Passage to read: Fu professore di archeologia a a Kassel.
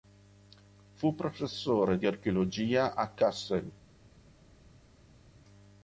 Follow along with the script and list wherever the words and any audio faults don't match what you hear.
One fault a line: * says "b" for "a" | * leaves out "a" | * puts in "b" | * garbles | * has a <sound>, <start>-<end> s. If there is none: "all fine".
* leaves out "a"